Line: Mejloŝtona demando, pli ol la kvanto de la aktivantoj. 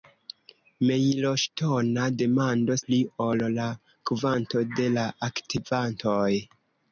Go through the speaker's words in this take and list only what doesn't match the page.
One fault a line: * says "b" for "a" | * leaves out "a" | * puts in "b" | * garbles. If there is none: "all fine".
all fine